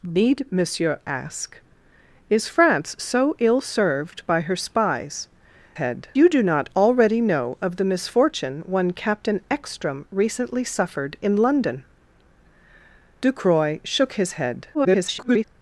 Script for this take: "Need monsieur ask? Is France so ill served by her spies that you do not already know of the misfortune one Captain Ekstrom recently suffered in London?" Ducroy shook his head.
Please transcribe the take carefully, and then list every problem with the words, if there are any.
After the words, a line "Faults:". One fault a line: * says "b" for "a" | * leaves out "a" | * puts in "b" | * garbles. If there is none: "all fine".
"Need monsieur ask? Is France so ill served by her spies head you do not already know of the misfortune one Captain Ekstrom recently suffered in London?" Ducroy shook his head. [garbled]
Faults:
* says "head" for "that"
* garbles